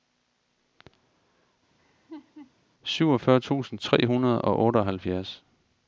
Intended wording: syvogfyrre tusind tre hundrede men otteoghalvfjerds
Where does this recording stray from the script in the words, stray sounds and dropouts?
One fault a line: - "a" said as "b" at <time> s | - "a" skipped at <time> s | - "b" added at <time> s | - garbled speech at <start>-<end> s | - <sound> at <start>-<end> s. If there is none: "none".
- laugh at 1.8-2.5 s
- "men" said as "og" at 4.4 s